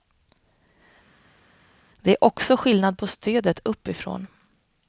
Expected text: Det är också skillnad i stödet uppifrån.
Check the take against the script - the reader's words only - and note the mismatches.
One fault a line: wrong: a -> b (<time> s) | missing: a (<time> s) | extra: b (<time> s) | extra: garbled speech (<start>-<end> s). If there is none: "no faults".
wrong: i -> på (3.0 s)